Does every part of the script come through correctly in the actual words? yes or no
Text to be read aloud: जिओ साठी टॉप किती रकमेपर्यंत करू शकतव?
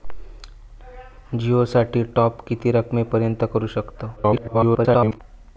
no